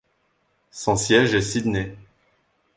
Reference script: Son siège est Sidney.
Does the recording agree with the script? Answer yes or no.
yes